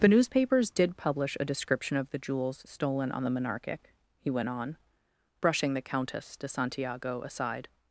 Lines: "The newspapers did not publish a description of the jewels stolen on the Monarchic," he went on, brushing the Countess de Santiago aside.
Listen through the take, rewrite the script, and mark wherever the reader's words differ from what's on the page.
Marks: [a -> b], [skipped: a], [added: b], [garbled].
"The newspapers did [skipped: not] publish a description of the jewels stolen on the Monarchic," he went on, brushing the Countess de Santiago aside.